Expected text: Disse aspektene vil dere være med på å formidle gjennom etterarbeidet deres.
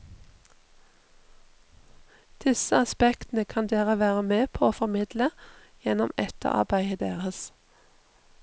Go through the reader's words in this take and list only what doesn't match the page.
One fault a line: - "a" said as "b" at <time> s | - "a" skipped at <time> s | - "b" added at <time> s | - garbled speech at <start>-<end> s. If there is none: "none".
- "vil" said as "kan" at 3.5 s